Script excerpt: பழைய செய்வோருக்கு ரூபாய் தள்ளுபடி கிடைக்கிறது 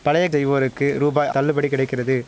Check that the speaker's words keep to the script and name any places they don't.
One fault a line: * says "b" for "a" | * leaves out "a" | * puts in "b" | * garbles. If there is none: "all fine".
all fine